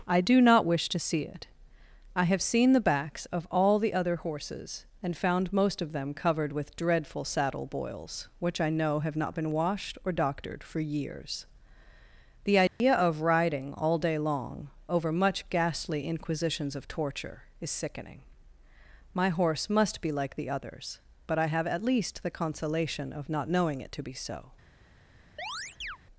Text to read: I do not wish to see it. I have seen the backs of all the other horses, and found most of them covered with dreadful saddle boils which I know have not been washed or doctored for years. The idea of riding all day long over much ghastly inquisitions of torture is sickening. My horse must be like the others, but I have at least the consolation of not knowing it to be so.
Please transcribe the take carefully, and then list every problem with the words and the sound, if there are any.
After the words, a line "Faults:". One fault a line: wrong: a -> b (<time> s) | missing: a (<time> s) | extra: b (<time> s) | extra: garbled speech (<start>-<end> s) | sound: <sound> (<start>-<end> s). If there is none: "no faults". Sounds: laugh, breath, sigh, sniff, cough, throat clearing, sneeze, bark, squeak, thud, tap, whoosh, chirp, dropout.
I do not wish to see it. I have seen the backs of all the other horses, and found most of them covered with dreadful saddle boils which I know have not been washed or doctored for years. The idea of riding all day long over much ghastly inquisitions of torture is sickening. My horse must be like the others, but I have at least the consolation of not knowing it to be so.
Faults:
sound: dropout (12.7-12.8 s)
sound: chirp (25.4-26.0 s)